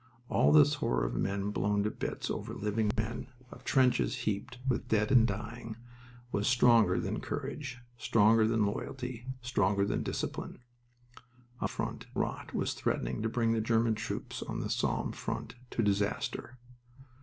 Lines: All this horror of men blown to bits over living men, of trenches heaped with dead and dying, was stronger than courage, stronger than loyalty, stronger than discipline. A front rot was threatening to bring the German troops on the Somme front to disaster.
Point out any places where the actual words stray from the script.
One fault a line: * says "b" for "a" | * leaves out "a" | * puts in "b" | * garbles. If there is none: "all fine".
all fine